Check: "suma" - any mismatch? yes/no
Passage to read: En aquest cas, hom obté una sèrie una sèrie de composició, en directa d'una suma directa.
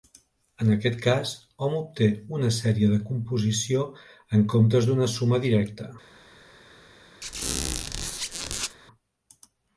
no